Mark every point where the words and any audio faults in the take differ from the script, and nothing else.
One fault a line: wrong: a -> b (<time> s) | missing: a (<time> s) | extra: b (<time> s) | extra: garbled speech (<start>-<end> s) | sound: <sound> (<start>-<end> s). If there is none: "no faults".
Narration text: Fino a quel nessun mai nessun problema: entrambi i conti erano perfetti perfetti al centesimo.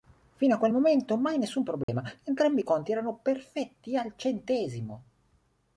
wrong: nessun -> momento (0.7 s)
sound: dropout (1.8-1.9 s)
missing: perfetti (4.0 s)